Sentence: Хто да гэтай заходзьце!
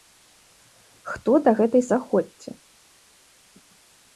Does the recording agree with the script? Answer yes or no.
yes